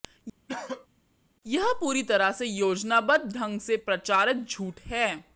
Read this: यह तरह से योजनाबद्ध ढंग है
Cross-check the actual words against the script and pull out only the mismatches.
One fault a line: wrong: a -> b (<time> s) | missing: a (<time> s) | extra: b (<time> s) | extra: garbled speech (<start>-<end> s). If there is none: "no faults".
extra: पूरी (1.8 s)
extra: से प्रचारित झूठ (3.6 s)